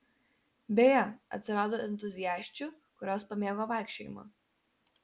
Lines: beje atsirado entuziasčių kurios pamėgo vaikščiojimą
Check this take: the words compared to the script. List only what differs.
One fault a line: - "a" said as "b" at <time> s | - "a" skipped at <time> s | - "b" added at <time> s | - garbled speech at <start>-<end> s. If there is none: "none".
none